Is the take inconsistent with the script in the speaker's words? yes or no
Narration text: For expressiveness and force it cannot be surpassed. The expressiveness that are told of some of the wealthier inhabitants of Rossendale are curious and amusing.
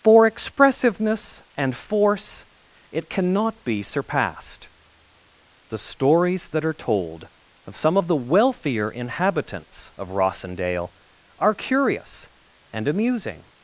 yes